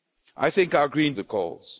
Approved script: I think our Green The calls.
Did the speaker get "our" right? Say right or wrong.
right